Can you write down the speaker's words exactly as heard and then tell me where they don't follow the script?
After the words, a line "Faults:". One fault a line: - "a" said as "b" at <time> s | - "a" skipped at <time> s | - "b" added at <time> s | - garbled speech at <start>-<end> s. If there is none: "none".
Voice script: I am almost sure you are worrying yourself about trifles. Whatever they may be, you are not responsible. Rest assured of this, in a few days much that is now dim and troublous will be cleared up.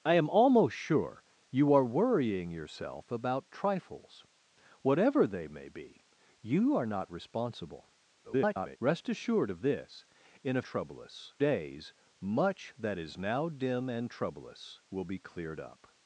I am almost sure you are worrying yourself about trifles. Whatever they may be, you are not responsible. [garbled] Rest assured of this, in a troublous days much that is now dim and troublous will be cleared up.
Faults:
- garbled speech at 8.2-8.8 s
- "few" said as "troublous" at 10.7 s